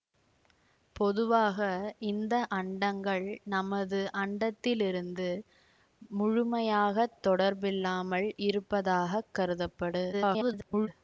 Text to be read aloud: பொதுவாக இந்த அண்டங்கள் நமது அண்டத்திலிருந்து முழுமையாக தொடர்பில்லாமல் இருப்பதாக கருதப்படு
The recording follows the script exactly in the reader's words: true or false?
false